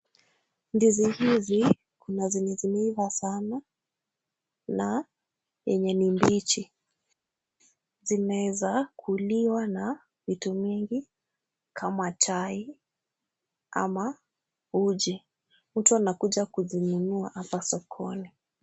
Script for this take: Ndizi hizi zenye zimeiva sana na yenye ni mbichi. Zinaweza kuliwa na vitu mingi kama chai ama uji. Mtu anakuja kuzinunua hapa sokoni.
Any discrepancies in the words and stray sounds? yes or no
yes